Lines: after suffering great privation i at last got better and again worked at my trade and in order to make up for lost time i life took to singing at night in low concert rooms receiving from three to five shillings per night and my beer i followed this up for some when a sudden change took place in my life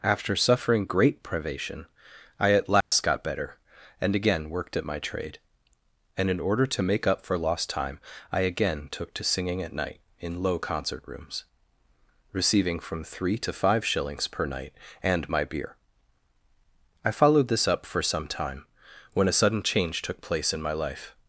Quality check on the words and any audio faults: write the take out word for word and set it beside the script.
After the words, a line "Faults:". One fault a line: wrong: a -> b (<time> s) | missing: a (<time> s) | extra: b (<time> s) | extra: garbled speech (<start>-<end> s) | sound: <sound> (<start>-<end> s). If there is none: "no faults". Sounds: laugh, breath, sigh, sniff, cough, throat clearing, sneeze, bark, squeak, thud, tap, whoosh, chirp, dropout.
after suffering great privation i at last got better and again worked at my trade and in order to make up for lost time i again took to singing at night in low concert rooms receiving from three to five shillings per night and my beer i followed this up for some time when a sudden change took place in my life
Faults:
sound: dropout (2.8-2.9 s)
wrong: life -> again (8.4 s)
extra: time (18.3 s)